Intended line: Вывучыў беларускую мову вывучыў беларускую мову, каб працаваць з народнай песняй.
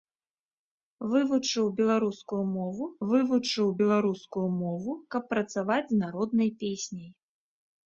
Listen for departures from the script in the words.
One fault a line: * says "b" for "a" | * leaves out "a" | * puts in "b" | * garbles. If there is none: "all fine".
all fine